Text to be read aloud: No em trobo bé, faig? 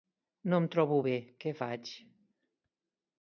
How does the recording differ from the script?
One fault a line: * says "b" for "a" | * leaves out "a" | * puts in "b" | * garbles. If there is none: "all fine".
* puts in "què"